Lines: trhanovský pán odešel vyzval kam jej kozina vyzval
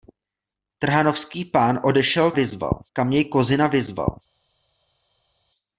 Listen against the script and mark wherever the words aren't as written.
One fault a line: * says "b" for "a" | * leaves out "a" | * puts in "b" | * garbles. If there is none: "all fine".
all fine